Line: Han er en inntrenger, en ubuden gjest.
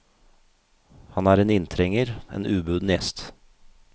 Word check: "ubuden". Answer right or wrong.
right